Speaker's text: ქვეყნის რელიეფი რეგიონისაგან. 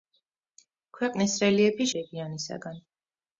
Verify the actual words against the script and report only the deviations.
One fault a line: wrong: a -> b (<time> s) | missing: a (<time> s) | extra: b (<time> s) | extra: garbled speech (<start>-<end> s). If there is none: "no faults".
no faults